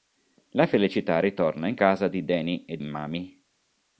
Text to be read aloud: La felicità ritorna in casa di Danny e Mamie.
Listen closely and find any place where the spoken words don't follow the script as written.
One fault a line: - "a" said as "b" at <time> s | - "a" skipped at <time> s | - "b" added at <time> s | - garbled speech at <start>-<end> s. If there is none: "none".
none